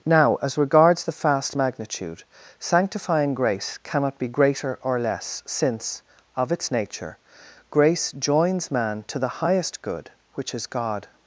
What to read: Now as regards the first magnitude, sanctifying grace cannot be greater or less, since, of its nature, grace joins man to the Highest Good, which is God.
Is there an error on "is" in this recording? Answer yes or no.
no